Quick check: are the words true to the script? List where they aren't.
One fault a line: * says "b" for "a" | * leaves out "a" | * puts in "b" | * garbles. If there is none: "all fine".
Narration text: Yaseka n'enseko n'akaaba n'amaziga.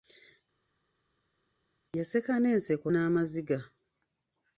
* leaves out "n'akaaba"